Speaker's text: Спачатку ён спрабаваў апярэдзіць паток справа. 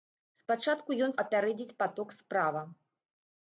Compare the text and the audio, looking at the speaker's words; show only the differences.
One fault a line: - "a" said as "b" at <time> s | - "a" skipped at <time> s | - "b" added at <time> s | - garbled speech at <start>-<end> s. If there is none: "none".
- "спрабаваў" skipped at 1.1 s